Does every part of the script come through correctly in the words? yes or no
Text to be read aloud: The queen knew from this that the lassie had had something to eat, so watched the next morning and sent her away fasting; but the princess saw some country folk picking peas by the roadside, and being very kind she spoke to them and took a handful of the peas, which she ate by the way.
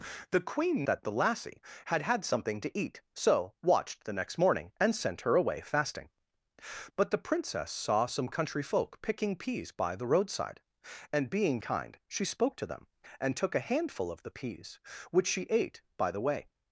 no